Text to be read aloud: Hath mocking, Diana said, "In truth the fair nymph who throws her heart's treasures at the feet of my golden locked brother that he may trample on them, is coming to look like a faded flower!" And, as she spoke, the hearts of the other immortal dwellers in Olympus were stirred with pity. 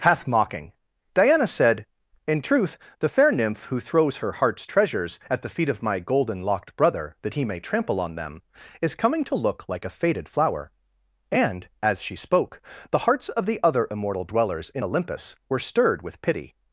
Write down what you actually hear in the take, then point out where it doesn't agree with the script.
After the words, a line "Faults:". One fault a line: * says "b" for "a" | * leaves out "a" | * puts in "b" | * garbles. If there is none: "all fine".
Hath mocking, Diana said, "In truth the fair nymph who throws her heart's treasures at the feet of my golden locked brother that he may trample on them, is coming to look like a faded flower!" And, as she spoke, the hearts of the other immortal dwellers in Olympus were stirred with pity.
Faults:
all fine